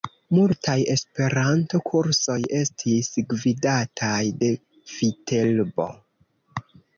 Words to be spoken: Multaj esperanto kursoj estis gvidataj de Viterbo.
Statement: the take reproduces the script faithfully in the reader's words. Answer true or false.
true